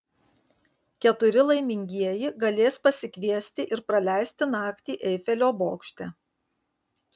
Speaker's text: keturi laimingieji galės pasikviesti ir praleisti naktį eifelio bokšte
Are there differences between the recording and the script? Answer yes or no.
no